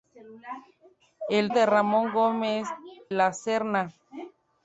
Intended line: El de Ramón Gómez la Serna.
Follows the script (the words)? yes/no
yes